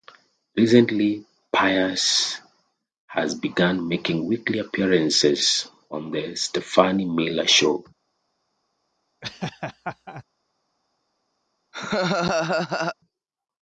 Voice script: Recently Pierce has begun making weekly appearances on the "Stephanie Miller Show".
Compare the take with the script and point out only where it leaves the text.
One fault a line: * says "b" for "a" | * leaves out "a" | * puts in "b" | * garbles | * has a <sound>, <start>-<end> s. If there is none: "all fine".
* has a laugh, 9.2-10.2 s
* has a laugh, 11.7-13.0 s